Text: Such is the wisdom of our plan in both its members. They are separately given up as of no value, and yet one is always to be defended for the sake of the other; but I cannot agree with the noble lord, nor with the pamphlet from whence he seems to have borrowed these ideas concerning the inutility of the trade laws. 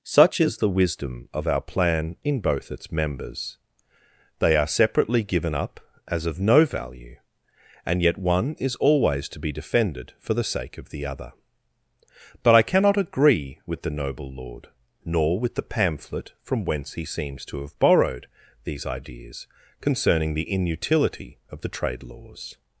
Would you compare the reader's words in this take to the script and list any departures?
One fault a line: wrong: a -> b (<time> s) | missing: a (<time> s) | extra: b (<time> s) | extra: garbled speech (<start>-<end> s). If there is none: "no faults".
no faults